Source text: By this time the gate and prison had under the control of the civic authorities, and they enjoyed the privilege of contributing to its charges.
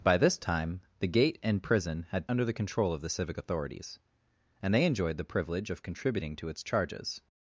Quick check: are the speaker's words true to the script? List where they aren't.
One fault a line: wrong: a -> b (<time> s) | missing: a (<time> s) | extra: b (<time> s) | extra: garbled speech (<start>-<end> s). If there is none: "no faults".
no faults